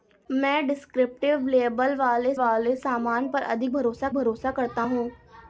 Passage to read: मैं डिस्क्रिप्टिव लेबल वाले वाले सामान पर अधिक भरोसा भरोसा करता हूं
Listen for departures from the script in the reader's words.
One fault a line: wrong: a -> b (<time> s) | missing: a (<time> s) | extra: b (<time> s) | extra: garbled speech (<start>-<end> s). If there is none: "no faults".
no faults